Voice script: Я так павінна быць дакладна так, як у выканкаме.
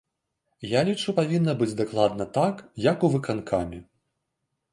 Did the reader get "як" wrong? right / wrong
right